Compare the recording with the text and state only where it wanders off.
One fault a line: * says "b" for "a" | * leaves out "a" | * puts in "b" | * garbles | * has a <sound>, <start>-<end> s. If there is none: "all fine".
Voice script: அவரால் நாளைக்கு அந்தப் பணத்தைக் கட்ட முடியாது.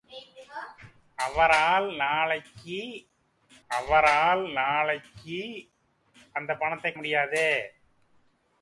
* puts in "அவரால் நாளைக்கு"
* leaves out "கட்ட"